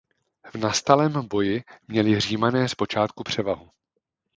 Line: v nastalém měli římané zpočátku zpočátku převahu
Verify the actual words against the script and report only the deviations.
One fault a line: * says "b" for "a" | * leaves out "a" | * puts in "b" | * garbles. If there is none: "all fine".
* puts in "boji"
* leaves out "zpočátku"